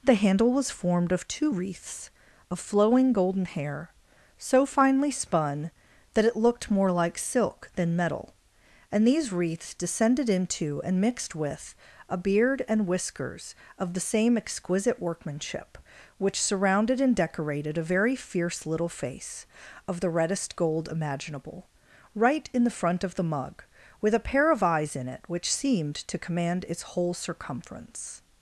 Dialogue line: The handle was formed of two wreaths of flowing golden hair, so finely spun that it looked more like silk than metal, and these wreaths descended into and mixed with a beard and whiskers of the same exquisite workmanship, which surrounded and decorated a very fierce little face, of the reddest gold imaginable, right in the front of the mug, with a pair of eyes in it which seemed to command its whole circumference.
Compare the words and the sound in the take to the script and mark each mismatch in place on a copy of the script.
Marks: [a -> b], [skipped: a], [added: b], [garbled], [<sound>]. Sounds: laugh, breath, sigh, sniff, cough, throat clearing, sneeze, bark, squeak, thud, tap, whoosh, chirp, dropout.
The handle was formed of two wreaths of flowing golden hair, so finely spun that it looked more like silk than metal, and these wreaths descended into and mixed with a beard and whiskers of the same exquisite workmanship, which surrounded and decorated a very fierce little face, of the reddest gold imaginable, right in the front of the mug, with a pair of eyes in it which seemed to command its whole circumference.